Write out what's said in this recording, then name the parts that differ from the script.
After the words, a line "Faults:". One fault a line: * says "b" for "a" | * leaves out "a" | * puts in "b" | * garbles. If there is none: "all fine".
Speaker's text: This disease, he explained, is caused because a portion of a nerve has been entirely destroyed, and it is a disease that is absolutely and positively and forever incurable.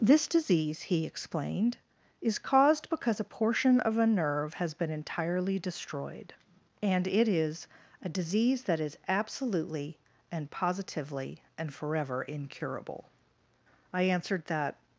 This disease, he explained, is caused because a portion of a nerve has been entirely destroyed, and it is a disease that is absolutely and positively and forever incurable. I answered that
Faults:
* puts in "I answered that"